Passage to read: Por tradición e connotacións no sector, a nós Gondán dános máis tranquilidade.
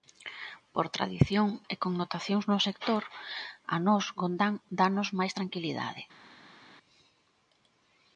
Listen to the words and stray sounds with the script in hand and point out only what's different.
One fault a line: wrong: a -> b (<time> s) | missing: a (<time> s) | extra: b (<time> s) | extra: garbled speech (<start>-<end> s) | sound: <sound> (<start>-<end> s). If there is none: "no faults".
no faults